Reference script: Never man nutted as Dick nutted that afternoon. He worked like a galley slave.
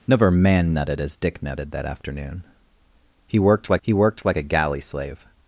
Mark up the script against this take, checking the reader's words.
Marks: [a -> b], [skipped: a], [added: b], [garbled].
Never man nutted as Dick nutted that afternoon. He worked like [added: he worked like] a galley slave.